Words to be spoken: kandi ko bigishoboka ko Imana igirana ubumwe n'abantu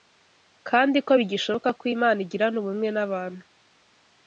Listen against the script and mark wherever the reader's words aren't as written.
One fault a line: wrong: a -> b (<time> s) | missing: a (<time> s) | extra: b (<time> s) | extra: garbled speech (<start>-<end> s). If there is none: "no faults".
no faults